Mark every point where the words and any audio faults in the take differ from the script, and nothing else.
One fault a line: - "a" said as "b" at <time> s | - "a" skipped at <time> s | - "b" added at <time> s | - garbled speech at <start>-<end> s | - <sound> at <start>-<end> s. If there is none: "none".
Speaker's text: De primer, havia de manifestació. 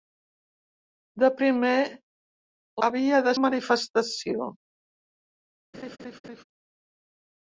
- laugh at 5.7-6.4 s